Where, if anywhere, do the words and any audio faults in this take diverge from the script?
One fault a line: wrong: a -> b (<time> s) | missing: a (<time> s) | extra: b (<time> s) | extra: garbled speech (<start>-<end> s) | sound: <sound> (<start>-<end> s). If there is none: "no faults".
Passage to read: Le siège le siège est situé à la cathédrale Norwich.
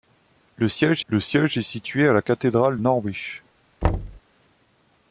sound: thud (3.8-4.2 s)